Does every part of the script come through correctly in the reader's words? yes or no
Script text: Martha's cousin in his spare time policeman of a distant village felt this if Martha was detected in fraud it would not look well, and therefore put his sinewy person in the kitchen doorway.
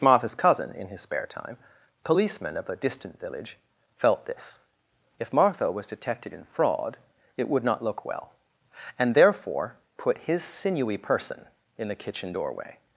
yes